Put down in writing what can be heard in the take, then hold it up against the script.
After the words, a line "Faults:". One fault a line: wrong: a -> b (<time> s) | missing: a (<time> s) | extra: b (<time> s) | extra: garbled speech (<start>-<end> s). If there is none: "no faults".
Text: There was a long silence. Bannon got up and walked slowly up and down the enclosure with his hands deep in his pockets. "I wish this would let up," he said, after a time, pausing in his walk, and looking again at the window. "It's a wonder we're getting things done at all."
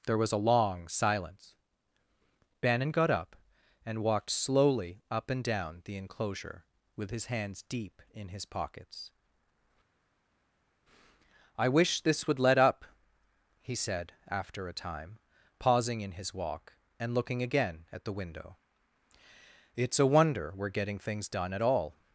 There was a long silence. Bannon got up and walked slowly up and down the enclosure with his hands deep in his pockets. "I wish this would let up," he said, after a time, pausing in his walk, and looking again at the window. "It's a wonder we're getting things done at all."
Faults:
no faults